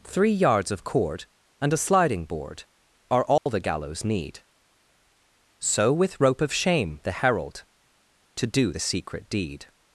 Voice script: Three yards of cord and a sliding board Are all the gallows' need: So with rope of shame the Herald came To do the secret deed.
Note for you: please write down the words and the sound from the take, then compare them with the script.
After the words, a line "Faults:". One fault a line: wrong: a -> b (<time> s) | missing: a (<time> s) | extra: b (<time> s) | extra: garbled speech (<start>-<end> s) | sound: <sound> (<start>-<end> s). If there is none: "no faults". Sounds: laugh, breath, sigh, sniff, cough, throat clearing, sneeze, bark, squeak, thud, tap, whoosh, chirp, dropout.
Three yards of cord and a sliding board Are all the gallows' need: So with rope of shame the Herald To do the secret deed.
Faults:
sound: dropout (3.4-3.5 s)
missing: came (7.7 s)